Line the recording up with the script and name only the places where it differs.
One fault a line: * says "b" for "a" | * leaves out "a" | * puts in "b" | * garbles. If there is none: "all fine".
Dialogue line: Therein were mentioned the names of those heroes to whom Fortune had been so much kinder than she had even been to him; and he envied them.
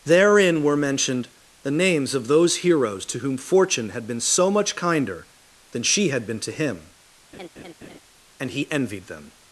* leaves out "even"